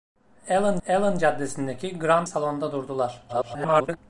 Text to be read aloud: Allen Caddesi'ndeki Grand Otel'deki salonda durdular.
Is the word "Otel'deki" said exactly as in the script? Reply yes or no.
no